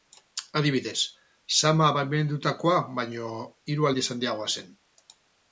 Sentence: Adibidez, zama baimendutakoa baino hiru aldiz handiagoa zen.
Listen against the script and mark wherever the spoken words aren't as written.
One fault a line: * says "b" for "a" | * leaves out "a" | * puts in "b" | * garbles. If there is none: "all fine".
all fine